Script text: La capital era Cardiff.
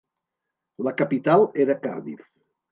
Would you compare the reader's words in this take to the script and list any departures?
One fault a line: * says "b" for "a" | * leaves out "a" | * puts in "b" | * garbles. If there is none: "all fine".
all fine